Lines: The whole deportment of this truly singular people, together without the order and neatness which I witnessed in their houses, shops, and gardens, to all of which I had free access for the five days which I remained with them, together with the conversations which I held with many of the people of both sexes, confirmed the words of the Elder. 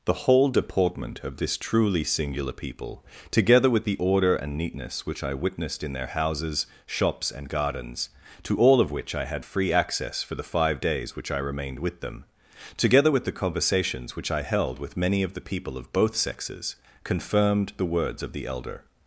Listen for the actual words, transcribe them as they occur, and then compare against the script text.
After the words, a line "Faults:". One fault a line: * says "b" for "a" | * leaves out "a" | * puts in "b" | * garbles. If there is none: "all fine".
The whole deportment of this truly singular people, together with the order and neatness which I witnessed in their houses, shops, and gardens, to all of which I had free access for the five days which I remained with them, together with the conversations which I held with many of the people of both sexes, confirmed the words of the Elder.
Faults:
* says "with" for "without"